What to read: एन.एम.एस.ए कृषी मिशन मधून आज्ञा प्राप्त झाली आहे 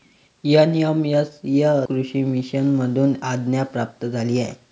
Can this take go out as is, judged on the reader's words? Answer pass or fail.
pass